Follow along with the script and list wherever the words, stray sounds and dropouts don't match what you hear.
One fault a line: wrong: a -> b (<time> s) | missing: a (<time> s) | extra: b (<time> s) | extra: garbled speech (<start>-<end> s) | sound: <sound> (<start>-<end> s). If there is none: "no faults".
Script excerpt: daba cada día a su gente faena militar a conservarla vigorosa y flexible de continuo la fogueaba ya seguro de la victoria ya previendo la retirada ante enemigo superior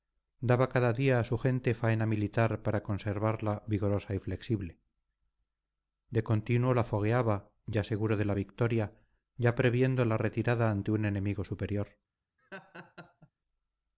wrong: a -> para (2.6 s)
extra: un (10.9 s)
sound: laugh (12.4-13.3 s)